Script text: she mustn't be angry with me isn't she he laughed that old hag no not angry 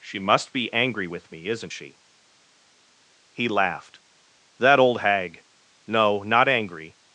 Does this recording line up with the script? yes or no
no